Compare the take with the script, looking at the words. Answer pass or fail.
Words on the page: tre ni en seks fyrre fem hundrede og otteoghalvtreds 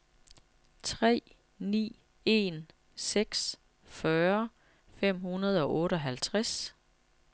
pass